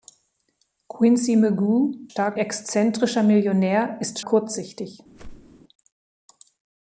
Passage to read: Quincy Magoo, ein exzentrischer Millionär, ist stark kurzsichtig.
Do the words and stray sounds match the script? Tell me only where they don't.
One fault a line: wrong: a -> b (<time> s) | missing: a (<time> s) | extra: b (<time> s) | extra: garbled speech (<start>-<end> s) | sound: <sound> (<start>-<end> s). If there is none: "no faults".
wrong: ein -> stark (2.1 s)
missing: stark (4.2 s)
sound: whoosh (5.1-5.6 s)